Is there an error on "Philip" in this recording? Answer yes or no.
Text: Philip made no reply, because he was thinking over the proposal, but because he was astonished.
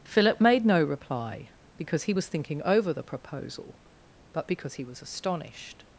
no